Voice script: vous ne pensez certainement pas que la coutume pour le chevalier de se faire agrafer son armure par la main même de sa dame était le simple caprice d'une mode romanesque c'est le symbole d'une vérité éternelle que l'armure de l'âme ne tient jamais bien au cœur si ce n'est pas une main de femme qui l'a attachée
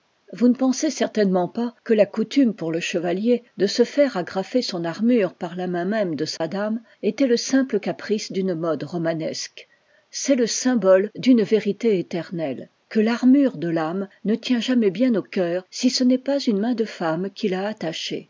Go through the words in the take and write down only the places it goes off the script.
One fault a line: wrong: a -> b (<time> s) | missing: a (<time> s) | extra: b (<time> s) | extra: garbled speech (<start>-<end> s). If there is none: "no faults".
no faults